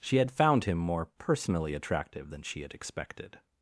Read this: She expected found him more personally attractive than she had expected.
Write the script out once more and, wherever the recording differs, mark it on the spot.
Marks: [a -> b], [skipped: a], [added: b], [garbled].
She [expected -> had] found him more personally attractive than she had expected.